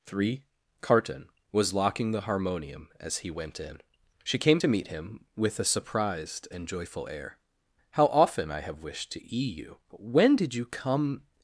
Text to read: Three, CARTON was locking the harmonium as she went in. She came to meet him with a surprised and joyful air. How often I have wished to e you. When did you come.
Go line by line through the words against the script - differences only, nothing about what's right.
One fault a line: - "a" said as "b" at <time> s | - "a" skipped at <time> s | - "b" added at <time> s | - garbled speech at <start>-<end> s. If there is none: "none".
- "she" said as "he" at 3.2 s